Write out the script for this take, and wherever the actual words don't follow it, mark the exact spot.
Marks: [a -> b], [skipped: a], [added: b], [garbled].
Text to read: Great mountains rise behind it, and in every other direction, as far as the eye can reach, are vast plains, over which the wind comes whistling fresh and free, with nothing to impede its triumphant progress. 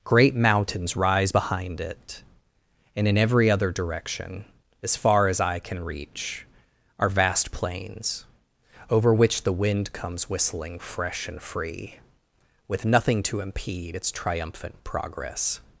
Great mountains rise behind it, and in every other direction, as far as [skipped: the] eye can reach, are vast plains, over which the wind comes whistling fresh and free, with nothing to impede its triumphant progress.